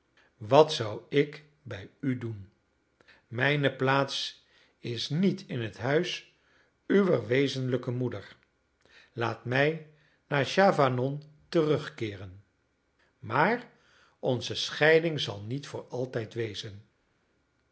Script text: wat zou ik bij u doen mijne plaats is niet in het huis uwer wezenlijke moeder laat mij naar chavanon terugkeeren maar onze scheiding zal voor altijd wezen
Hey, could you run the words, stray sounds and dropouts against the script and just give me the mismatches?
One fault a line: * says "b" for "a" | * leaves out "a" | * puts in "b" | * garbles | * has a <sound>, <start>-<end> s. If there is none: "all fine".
* puts in "niet"